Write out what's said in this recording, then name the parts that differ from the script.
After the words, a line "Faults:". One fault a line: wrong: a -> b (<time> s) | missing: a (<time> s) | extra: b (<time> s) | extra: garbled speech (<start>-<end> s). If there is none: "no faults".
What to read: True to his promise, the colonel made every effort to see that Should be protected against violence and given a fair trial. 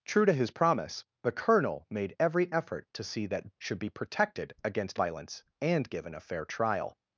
True to his promise, the colonel made every effort to see that Should be protected against violence and given a fair trial.
Faults:
no faults